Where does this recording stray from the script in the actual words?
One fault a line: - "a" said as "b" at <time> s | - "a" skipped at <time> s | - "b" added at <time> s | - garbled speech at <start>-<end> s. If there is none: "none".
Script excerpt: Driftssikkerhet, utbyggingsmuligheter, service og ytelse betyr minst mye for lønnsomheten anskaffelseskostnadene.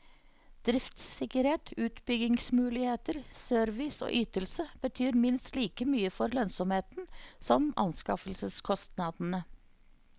- "like" added at 5.6 s
- "som" added at 7.5 s